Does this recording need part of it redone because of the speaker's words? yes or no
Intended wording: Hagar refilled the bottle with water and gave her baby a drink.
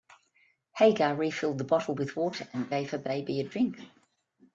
no